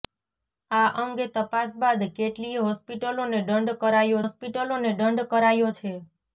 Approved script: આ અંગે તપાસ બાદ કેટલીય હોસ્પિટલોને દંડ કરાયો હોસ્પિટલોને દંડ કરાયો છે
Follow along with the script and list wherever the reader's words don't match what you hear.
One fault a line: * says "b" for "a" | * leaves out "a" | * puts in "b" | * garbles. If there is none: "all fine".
all fine